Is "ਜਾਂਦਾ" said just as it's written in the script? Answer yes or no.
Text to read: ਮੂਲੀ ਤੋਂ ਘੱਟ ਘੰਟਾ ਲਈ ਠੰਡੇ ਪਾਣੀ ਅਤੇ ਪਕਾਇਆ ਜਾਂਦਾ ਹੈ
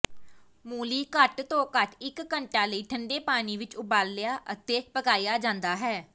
yes